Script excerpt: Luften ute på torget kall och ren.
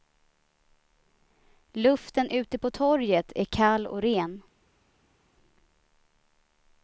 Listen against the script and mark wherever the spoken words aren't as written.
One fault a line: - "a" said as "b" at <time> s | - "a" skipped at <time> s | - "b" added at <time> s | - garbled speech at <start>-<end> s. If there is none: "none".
- "är" added at 3.4 s